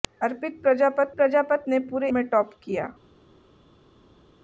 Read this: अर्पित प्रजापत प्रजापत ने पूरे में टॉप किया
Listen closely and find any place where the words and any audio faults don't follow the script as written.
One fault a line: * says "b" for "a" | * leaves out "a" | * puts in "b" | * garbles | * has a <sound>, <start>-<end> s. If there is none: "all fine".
all fine